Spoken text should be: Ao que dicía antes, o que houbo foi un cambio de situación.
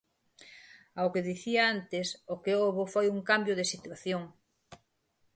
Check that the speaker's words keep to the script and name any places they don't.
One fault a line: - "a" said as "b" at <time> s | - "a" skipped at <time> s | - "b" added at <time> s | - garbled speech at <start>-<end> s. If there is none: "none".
none